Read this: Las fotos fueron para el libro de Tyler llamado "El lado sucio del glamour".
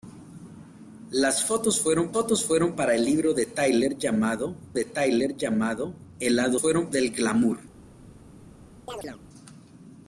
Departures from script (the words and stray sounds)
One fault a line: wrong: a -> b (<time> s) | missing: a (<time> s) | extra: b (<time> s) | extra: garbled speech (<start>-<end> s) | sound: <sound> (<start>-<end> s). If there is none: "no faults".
extra: fotos fueron (2.1 s)
extra: de Tyler llamado (4.7 s)
wrong: sucio -> fueron (6.6 s)
sound: chirp (8.9-9.2 s)